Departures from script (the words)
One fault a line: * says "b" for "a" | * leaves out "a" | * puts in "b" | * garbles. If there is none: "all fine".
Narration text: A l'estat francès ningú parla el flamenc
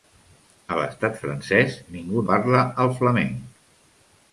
all fine